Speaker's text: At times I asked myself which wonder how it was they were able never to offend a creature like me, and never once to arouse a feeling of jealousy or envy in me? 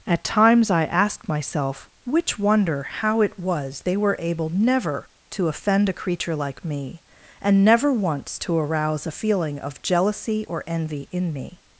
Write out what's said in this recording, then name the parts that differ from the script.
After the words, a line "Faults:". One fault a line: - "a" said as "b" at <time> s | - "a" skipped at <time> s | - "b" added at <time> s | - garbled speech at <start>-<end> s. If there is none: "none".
At times I asked myself which wonder how it was they were able never to offend a creature like me, and never once to arouse a feeling of jealousy or envy in me?
Faults:
none